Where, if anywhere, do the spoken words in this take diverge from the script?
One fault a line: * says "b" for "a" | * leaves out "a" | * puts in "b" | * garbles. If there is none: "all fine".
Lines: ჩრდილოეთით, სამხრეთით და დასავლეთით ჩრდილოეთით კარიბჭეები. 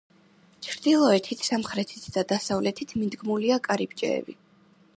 * says "მიდგმულია" for "ჩრდილოეთით"